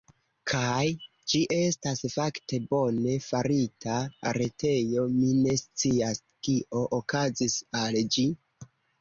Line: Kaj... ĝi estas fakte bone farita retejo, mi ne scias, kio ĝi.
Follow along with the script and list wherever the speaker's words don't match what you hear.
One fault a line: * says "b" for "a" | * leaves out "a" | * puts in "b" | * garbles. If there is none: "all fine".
* puts in "okazis al"